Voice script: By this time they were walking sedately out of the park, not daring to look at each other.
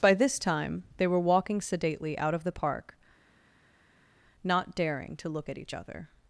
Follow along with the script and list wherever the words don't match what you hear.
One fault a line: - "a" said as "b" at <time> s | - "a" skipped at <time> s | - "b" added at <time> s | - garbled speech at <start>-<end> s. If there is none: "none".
none